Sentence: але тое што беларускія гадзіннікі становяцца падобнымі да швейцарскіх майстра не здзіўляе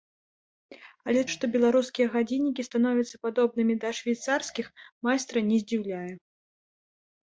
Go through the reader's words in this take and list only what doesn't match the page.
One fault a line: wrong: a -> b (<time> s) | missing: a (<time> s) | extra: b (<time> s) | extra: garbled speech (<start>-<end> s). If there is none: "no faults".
missing: тое (1.2 s)